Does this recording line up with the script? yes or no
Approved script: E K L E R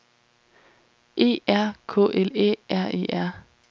no